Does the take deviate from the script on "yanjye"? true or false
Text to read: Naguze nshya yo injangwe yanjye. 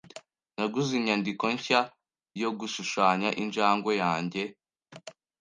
false